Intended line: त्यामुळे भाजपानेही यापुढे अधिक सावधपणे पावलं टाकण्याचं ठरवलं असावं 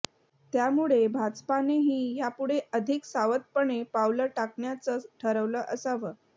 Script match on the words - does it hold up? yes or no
yes